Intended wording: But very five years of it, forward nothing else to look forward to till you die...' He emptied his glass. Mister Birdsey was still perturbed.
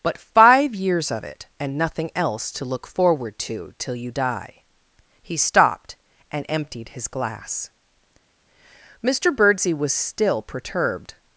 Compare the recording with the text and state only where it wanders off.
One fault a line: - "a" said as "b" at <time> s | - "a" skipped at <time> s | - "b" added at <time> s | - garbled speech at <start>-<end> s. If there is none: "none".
- "very" skipped at 0.2 s
- "forward" said as "and" at 1.6 s
- "stopped and" added at 5.4 s